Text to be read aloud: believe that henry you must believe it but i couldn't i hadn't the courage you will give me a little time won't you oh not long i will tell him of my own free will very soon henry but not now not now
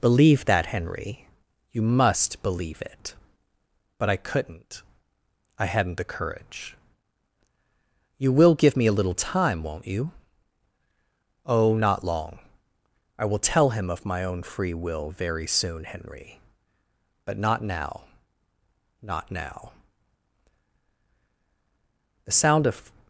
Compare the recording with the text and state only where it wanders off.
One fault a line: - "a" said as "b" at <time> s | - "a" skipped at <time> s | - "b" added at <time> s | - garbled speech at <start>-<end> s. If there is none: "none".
- "the sound of" added at 22.2 s